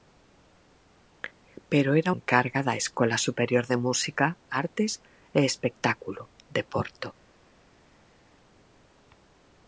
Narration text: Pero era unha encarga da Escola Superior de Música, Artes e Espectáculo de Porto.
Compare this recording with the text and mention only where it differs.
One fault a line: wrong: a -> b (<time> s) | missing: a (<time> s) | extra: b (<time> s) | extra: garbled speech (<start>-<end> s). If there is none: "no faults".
missing: unha (2.1 s)